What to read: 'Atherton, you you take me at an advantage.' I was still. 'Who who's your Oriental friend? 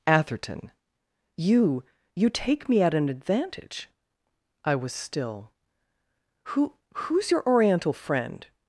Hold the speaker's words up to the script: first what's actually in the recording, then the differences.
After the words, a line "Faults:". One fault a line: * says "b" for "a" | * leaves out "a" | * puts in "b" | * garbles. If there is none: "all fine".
'Atherton, you you take me at an advantage.' I was still. 'Who who's your Oriental friend?
Faults:
all fine